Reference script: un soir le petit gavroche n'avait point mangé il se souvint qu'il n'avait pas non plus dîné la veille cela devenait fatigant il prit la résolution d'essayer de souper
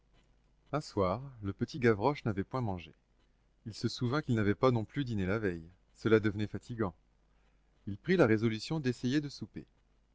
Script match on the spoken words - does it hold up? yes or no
yes